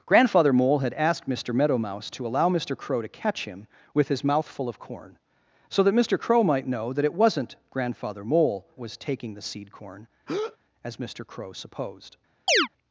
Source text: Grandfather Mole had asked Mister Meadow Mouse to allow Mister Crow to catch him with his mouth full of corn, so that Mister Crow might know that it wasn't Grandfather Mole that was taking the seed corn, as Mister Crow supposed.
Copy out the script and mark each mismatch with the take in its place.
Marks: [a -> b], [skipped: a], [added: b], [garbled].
Grandfather Mole had asked Mister Meadow Mouse to allow Mister Crow to catch him with his mouth full of corn, so that Mister Crow might know that it wasn't Grandfather Mole [skipped: that] was taking the seed corn, as Mister Crow supposed.